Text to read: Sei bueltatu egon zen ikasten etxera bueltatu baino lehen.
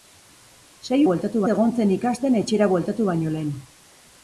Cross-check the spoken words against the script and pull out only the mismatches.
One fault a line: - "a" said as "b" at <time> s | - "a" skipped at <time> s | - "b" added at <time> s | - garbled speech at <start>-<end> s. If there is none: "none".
none